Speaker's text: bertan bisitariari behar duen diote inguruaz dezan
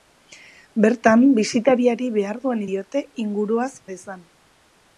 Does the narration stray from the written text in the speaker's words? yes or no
no